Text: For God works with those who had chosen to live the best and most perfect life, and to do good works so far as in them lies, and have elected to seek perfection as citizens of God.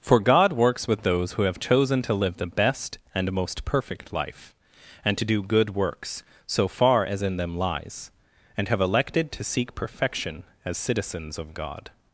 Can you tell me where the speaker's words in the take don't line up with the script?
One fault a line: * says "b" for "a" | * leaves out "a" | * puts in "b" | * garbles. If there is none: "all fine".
* says "have" for "had"